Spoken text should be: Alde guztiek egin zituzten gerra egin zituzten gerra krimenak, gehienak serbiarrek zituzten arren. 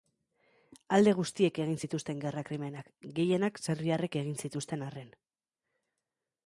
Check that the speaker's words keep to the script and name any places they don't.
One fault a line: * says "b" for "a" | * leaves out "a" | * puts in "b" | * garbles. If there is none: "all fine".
* leaves out "egin zituzten gerra"
* puts in "egin"